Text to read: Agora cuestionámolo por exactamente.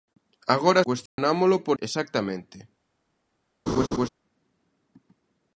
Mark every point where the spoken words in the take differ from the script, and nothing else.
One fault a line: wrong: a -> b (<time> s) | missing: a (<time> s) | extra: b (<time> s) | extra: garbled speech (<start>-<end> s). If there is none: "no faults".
no faults